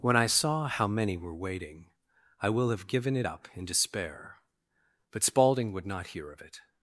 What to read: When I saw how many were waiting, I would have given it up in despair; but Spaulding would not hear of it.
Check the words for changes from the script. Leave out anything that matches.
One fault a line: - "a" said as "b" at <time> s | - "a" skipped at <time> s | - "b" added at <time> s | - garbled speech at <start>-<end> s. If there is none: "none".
- "would" said as "will" at 2.5 s